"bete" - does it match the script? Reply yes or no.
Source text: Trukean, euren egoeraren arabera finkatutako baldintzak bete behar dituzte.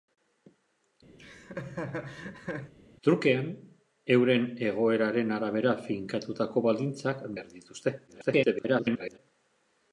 no